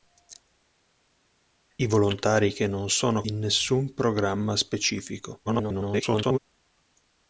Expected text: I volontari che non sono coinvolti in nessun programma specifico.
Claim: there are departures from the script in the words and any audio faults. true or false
true